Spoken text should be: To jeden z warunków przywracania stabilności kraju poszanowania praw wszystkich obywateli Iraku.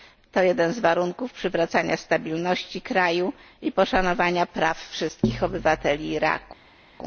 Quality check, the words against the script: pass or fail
fail